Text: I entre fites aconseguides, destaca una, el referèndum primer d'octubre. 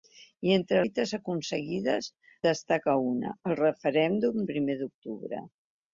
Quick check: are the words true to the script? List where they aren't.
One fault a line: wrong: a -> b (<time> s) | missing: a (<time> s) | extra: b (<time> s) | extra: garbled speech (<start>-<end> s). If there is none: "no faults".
no faults